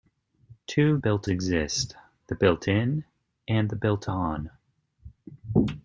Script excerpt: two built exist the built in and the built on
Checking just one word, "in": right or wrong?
right